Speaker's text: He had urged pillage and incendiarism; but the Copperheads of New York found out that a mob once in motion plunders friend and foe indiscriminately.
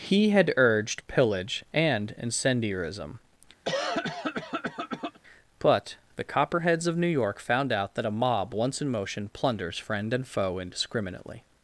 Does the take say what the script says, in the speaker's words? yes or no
yes